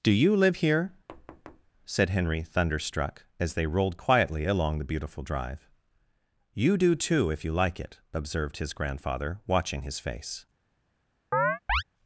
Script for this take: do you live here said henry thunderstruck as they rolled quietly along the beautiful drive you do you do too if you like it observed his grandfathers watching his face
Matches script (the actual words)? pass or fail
fail